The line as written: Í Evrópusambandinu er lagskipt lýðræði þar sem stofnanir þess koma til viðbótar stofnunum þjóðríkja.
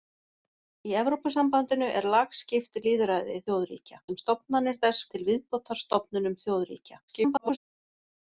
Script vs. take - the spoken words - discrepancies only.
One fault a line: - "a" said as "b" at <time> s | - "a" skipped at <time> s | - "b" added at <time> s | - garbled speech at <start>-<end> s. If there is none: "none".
- "þar" said as "þjóðríkja" at 3.5 s
- "koma" skipped at 5.1 s
- garbled speech at 7.1-7.6 s